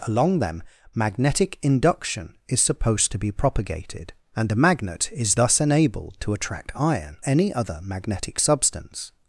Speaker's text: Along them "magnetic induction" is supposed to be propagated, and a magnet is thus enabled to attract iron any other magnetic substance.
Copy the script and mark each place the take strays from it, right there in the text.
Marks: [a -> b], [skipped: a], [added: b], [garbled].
Along them "magnetic induction" is supposed to be propagated, and a magnet is thus enabled to attract iron any other magnetic substance.